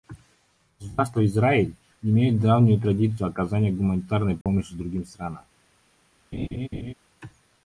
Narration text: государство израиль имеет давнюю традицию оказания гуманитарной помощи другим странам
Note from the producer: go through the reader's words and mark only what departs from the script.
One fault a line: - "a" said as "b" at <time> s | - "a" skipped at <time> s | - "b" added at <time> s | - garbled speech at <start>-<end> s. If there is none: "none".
none